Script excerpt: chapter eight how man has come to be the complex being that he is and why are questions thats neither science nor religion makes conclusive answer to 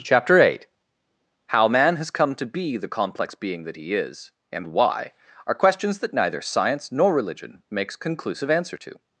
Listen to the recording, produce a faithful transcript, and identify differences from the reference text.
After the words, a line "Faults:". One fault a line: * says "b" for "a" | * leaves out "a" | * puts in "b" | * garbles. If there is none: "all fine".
chapter eight how man has come to be the complex being that he is and why are questions that neither science nor religion makes conclusive answer to
Faults:
* says "that" for "thats"